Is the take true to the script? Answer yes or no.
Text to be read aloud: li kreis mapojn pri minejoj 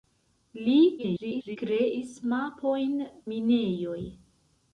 no